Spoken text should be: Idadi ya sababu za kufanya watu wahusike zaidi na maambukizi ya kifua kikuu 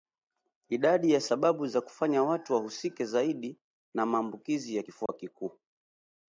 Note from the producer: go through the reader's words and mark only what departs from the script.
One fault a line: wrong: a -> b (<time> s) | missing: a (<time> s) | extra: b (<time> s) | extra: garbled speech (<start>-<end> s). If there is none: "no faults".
no faults